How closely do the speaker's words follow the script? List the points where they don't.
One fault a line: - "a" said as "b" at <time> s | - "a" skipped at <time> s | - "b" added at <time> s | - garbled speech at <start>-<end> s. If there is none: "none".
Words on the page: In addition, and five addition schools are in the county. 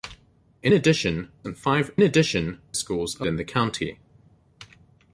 none